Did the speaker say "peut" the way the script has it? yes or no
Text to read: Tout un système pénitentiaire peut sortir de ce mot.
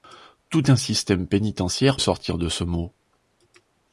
no